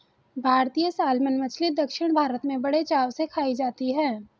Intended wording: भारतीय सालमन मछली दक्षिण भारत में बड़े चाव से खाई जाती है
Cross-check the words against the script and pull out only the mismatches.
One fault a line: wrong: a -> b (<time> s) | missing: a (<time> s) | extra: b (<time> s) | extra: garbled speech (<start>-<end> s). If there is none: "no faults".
no faults